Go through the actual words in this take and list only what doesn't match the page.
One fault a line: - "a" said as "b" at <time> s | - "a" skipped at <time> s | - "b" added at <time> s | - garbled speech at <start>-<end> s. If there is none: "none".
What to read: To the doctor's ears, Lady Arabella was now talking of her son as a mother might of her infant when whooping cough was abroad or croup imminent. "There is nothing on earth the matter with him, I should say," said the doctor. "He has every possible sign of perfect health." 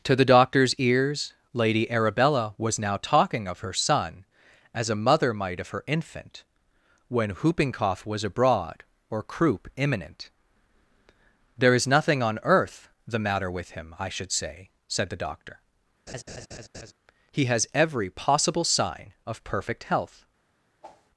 none